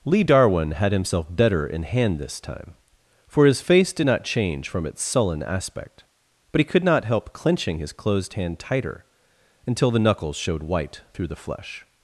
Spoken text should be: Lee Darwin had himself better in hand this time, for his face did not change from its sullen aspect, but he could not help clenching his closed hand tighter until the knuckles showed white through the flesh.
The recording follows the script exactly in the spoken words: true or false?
true